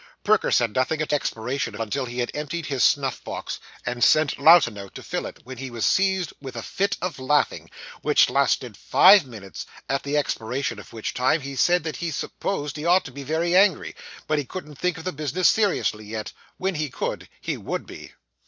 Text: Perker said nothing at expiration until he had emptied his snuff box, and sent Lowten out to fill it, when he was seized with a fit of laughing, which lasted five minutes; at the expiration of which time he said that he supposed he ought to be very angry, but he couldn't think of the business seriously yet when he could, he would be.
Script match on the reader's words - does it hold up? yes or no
yes